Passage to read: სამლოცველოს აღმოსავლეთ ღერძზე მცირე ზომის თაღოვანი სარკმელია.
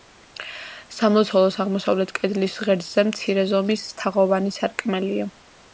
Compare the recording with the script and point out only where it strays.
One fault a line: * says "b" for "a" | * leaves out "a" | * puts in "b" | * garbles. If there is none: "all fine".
* puts in "კედლის"